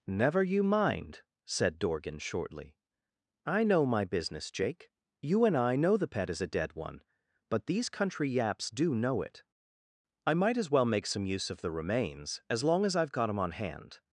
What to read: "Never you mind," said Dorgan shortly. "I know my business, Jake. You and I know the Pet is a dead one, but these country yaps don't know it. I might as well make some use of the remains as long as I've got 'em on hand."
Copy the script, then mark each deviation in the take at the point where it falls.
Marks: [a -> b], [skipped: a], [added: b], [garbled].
"Never you mind," said Dorgan shortly. "I know my business, Jake. You and I know the Pet is a dead one, but these country yaps [don't -> do] know it. I might as well make some use of the remains as long as I've got 'em on hand."